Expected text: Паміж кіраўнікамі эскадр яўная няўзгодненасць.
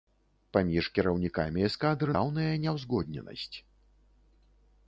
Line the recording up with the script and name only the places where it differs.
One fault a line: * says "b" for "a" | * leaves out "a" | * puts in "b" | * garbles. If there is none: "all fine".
all fine